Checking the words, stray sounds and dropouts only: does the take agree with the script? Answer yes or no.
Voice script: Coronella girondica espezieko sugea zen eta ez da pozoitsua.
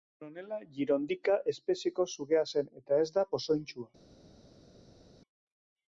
yes